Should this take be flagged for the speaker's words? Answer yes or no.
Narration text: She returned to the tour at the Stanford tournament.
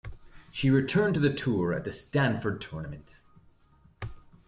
no